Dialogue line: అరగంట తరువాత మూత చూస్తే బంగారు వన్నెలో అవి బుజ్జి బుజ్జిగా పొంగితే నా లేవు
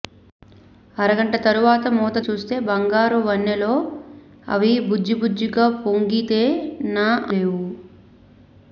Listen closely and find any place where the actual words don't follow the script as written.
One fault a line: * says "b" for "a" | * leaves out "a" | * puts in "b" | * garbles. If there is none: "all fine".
all fine